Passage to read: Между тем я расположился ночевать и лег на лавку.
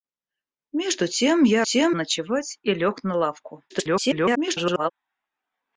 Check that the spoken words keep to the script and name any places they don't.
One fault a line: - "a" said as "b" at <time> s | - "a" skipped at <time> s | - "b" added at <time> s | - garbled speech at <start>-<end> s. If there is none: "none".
- "расположился" said as "тем" at 1.6 s
- garbled speech at 3.7-4.9 s